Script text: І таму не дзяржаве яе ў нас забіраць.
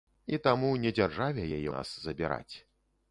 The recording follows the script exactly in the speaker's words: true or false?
false